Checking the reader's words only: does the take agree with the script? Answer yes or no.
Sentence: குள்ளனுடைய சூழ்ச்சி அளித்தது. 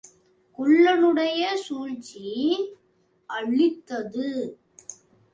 yes